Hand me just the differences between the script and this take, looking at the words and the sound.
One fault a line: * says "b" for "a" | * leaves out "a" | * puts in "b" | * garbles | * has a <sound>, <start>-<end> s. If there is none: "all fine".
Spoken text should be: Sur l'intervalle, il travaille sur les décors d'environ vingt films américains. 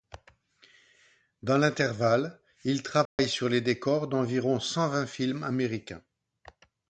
* says "Dans" for "Sur"
* has a dropout, 3.1-3.2 s
* puts in "cent"